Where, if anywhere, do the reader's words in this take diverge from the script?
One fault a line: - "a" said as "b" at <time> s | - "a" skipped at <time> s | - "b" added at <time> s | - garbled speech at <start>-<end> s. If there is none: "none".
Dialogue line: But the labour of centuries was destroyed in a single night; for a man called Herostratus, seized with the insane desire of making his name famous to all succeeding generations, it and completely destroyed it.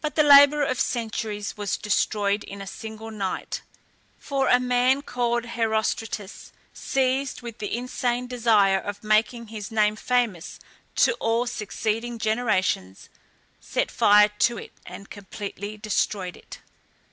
- "set fire to" added at 13.6 s